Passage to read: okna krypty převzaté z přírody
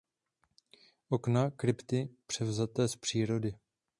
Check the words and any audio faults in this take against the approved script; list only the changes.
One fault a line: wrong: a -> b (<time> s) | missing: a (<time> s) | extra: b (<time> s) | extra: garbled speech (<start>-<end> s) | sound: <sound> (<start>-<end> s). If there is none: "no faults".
no faults